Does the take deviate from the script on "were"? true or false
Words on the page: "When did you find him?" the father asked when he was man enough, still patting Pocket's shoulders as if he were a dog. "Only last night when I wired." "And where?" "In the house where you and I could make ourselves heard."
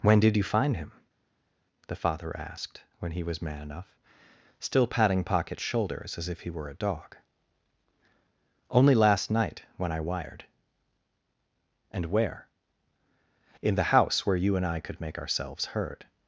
false